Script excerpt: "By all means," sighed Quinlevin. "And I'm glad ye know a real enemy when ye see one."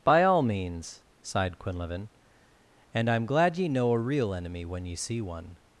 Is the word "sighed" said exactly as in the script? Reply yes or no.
yes